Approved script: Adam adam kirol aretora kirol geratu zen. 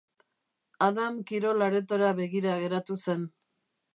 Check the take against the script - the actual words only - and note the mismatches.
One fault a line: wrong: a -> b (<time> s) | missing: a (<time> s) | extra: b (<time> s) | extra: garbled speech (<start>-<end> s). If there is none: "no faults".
missing: adam (1.2 s)
wrong: kirol -> begira (2.2 s)